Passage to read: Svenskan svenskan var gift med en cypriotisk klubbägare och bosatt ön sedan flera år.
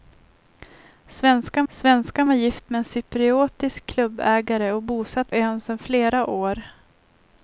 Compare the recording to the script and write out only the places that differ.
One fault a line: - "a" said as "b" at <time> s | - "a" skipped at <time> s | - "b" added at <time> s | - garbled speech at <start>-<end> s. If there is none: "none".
none